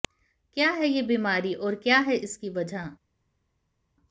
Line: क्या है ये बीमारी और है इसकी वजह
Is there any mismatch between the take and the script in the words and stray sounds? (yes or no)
yes